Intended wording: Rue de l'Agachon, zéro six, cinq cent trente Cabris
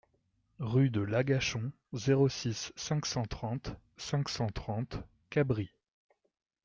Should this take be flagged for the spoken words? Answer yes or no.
yes